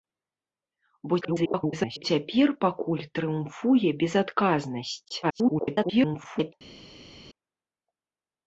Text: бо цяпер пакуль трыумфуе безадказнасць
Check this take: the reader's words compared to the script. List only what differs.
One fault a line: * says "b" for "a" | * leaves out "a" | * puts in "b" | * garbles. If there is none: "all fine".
* garbles
* garbles